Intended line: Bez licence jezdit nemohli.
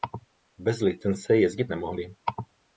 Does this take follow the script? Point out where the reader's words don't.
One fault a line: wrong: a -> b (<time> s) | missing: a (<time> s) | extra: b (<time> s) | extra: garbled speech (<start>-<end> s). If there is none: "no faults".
no faults